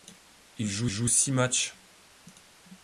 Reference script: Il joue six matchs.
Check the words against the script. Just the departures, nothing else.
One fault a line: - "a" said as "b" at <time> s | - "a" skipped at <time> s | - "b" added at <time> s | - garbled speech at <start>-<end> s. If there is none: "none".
- "joue" added at 0.8 s